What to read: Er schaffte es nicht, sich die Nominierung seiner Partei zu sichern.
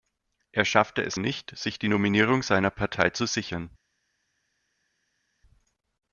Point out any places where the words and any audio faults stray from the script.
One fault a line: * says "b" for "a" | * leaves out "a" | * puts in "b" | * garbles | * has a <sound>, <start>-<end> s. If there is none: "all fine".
all fine